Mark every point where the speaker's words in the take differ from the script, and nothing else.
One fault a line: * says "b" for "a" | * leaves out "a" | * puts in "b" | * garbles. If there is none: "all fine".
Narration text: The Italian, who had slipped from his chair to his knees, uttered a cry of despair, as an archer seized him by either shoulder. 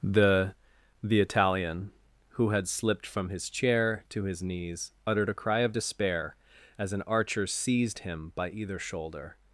* puts in "the"